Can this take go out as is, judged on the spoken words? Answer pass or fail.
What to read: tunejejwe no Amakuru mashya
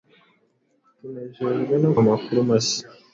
pass